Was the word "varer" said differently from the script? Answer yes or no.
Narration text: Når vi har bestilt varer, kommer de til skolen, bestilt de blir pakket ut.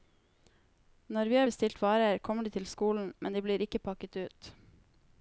no